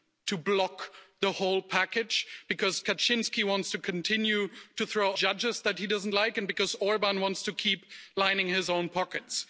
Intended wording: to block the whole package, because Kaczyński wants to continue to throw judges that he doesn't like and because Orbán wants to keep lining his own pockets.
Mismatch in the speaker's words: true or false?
false